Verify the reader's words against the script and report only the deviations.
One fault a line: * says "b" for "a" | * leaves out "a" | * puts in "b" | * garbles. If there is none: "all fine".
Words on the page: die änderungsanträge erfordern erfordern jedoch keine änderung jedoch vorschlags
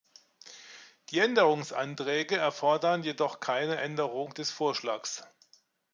* leaves out "erfordern"
* says "des" for "jedoch"